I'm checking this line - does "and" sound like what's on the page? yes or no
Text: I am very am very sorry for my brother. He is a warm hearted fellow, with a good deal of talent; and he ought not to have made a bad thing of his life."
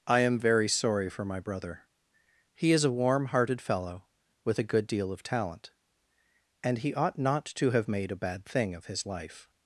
yes